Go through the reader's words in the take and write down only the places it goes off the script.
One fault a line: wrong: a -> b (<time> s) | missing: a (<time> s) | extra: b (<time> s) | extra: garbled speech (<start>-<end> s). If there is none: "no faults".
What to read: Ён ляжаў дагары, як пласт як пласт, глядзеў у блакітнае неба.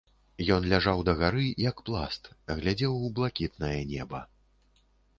missing: як пласт (2.3 s)